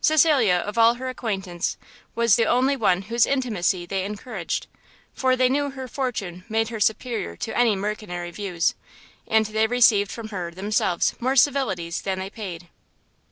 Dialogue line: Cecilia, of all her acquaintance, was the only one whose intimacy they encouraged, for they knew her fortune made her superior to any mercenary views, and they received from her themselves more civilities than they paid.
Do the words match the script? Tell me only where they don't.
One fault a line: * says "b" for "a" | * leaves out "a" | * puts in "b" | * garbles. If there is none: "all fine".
all fine